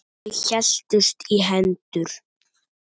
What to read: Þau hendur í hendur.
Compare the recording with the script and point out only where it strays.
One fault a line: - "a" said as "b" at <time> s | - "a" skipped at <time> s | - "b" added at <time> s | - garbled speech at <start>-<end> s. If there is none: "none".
- "hendur" said as "héldust" at 0.4 s